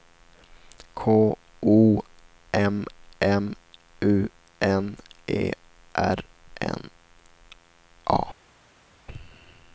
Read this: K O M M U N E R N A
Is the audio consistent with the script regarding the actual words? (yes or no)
yes